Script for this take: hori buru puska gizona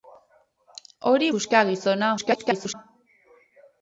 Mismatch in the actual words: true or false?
true